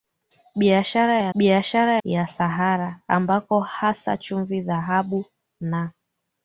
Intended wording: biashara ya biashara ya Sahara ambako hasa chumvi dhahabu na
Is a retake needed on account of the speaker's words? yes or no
no